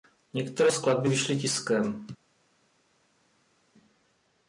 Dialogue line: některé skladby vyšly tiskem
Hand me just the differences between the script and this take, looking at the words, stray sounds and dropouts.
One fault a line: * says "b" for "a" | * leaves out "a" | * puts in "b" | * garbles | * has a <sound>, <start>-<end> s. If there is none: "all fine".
all fine